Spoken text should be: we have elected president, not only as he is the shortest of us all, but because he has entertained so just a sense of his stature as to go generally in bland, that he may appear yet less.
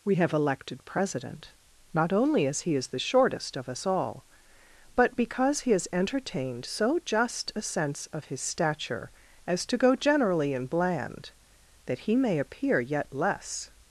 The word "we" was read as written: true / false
true